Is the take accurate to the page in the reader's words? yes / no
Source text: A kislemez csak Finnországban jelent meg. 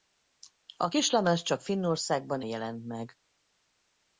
yes